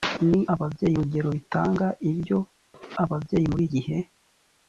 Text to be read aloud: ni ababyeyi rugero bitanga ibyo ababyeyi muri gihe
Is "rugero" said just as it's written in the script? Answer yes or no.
yes